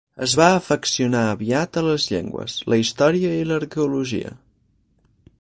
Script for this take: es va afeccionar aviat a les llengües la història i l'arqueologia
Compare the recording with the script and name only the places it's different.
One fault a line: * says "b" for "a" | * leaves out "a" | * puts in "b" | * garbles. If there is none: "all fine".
all fine